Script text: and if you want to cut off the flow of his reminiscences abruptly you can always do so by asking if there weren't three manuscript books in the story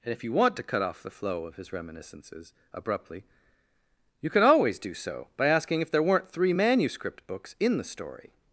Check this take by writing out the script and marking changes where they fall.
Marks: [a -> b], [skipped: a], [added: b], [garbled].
and if you want to cut off the flow of his reminiscences abruptly you can always do so by asking if there weren't three manuscript books in the story